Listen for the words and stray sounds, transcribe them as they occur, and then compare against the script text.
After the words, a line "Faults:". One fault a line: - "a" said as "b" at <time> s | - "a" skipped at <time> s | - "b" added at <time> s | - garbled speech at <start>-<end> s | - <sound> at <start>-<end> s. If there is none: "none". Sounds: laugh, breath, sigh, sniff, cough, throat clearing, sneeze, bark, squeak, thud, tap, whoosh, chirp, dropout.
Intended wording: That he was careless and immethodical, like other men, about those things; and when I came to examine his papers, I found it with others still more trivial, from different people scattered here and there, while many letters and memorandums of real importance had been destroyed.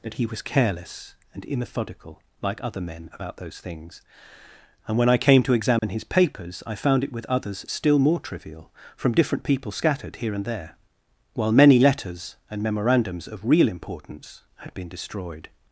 That he was careless and immethodical, like other men, about those things; and when I came to examine his papers, I found it with others still more trivial, from different people scattered here and there, while many letters and memorandums of real importance had been destroyed.
Faults:
- dropout at 5.8-5.8 s